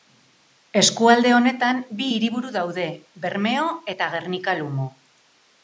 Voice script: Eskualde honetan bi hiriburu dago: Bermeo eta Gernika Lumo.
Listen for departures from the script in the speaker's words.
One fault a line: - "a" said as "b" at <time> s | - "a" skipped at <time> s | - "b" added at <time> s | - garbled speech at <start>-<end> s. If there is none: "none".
- "dago" said as "daude" at 2.6 s